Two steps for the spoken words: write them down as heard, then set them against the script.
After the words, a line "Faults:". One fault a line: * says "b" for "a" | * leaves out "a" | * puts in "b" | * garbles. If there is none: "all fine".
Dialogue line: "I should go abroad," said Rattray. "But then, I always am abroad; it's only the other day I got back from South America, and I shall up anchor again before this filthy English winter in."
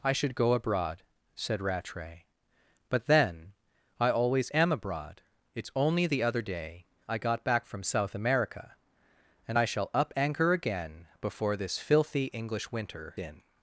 "I should go abroad," said Rattray. "But then, I always am abroad; it's only the other day I got back from South America, and I shall up anchor again before this filthy English winter in."
Faults:
all fine